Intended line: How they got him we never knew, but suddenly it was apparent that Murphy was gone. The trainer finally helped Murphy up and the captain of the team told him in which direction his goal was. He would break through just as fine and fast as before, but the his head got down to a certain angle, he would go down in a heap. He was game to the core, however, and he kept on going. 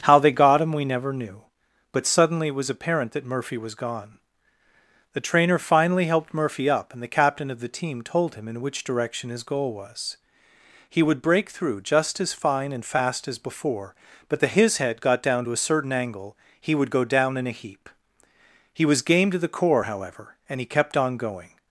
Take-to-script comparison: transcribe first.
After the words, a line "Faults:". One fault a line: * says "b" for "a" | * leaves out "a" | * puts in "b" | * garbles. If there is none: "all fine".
How they got him we never knew, but suddenly it was apparent that Murphy was gone. The trainer finally helped Murphy up and the captain of the team told him in which direction his goal was. He would break through just as fine and fast as before, but the his head got down to a certain angle, he would go down in a heap. He was game to the core, however, and he kept on going.
Faults:
all fine